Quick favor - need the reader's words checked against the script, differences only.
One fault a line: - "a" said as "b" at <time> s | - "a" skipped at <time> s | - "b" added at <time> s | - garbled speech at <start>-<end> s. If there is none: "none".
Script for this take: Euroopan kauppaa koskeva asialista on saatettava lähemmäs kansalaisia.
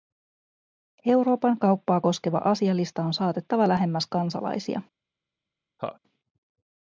none